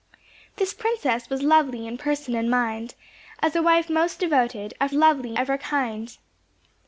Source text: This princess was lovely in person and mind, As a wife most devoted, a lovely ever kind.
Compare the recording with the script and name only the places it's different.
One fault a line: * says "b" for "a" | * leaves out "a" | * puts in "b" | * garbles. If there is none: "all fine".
all fine